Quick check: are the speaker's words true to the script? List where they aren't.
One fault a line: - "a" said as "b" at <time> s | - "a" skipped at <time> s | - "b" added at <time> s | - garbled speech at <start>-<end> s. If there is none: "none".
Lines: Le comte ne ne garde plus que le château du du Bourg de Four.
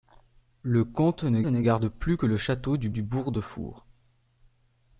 none